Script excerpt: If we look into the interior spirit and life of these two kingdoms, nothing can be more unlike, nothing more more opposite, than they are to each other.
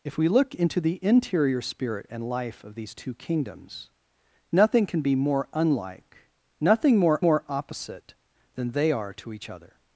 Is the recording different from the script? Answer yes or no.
no